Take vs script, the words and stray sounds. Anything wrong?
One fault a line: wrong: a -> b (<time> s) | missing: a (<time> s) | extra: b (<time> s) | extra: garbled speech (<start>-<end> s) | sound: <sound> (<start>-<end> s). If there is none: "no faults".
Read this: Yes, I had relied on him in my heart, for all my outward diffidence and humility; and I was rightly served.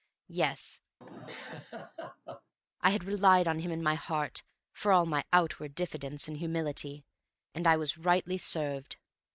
sound: laugh (1.0-2.5 s)